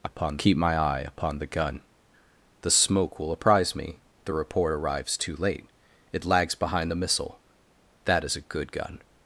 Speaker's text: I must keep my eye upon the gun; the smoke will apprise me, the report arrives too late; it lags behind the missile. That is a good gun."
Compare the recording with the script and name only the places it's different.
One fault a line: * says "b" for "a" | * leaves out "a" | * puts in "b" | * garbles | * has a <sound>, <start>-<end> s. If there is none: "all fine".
* says "upon" for "must"